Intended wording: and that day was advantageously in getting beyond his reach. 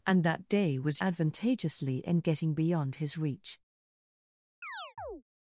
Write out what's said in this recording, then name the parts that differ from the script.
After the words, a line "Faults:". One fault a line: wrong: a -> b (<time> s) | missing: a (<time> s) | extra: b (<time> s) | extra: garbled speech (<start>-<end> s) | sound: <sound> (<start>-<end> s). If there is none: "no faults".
and that day was advantageously in getting beyond his reach.
Faults:
sound: chirp (4.6-5.2 s)